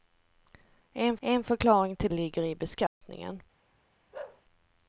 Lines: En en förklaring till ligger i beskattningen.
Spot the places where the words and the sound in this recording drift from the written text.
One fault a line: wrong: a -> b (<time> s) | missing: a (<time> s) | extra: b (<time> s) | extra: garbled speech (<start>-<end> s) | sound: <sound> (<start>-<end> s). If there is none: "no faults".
sound: dropout (2.9-3.0 s)
sound: bark (4.1-4.4 s)